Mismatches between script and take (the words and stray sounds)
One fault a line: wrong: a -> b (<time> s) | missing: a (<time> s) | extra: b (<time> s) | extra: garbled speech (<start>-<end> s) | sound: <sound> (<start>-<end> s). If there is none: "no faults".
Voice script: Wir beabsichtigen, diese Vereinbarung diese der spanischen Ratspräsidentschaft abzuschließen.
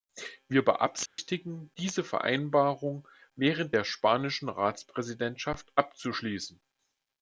sound: dropout (1.1-1.2 s)
wrong: diese -> während (3.4 s)